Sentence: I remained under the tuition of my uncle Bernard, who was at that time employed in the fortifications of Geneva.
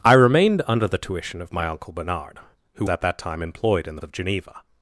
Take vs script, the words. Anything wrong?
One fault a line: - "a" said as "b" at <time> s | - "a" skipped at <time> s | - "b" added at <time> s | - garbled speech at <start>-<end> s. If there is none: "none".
- "was" skipped at 2.9 s
- "fortifications" skipped at 4.0 s